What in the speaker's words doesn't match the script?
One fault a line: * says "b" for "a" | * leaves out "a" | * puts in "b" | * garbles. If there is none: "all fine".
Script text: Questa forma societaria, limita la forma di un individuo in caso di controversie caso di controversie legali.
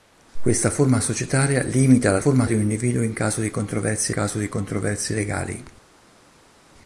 all fine